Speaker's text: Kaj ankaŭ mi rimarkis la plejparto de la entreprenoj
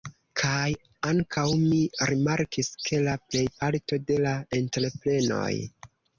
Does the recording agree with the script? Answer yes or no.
no